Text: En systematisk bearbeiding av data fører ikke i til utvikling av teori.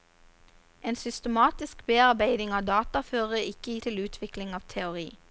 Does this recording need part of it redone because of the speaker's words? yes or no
no